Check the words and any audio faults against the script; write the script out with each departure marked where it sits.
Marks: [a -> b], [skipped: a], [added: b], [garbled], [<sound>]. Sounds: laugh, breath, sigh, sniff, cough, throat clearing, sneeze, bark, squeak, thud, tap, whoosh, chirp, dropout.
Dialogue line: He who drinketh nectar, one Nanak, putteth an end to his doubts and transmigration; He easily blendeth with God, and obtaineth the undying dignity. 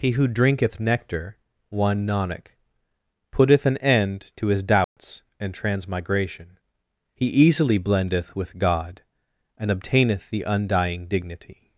He who drinketh nectar, one Nanak, putteth an end to his doubts [dropout] and transmigration; He easily blendeth with God, and obtaineth the undying dignity.